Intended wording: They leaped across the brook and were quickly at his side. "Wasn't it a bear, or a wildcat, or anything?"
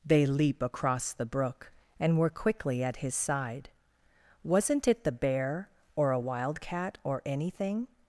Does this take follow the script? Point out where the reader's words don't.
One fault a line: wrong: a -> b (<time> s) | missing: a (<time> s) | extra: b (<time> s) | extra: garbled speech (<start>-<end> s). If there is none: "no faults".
wrong: leaped -> leap (0.2 s)
wrong: a -> the (5.0 s)